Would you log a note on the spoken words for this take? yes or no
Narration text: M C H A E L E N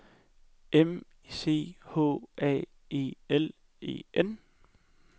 no